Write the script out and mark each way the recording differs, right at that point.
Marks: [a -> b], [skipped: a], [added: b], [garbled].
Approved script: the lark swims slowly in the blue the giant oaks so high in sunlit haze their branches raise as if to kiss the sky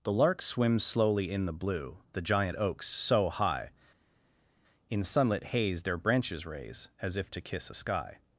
the lark swims slowly in the blue the giant oaks so high in sunlit haze their branches raise as if to kiss [the -> a] sky